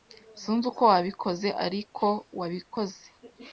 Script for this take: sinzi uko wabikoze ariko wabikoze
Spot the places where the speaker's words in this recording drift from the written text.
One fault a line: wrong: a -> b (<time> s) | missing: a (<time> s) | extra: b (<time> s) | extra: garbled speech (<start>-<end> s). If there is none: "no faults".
no faults